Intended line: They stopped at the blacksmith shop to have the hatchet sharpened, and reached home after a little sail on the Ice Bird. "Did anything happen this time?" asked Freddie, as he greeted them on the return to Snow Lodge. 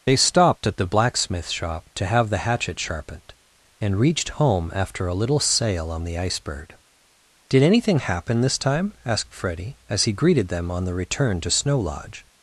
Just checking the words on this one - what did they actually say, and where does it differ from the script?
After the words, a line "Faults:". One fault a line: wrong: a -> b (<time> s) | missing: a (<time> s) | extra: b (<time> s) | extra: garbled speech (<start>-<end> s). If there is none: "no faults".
They stopped at the blacksmith shop to have the hatchet sharpened, and reached home after a little sail on the Ice Bird. "Did anything happen this time?" asked Freddie, as he greeted them on the return to Snow Lodge.
Faults:
no faults